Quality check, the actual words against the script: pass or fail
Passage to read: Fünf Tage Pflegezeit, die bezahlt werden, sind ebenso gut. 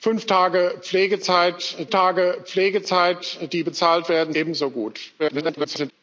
fail